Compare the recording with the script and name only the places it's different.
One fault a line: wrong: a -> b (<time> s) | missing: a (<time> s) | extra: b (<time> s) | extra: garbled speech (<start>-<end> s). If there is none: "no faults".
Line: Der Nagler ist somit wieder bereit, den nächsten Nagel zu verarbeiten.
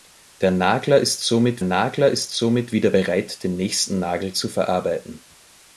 extra: Nagler ist somit (1.6 s)